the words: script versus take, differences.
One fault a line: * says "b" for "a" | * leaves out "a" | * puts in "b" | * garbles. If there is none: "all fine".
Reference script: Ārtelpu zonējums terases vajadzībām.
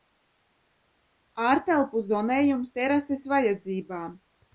all fine